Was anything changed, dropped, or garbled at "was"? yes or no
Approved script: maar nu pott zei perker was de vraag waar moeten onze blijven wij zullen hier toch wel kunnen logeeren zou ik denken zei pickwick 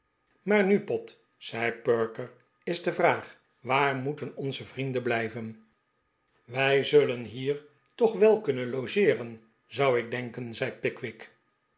yes